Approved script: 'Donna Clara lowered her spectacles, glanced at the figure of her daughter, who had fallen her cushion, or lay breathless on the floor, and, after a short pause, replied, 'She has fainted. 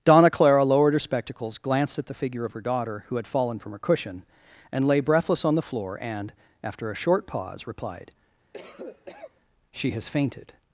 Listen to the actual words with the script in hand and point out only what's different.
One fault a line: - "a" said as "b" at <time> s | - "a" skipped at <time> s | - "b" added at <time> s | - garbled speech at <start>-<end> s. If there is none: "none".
- "from" added at 3.6 s
- "or" said as "and" at 4.7 s